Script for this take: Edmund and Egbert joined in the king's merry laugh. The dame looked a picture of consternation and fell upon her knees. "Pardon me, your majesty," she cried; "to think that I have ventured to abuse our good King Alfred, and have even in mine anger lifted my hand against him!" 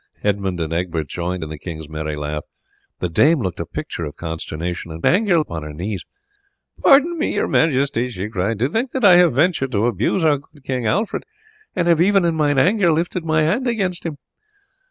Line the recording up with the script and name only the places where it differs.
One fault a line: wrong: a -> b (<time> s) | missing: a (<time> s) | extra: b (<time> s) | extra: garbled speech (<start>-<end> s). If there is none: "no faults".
wrong: fell -> anger (5.1 s)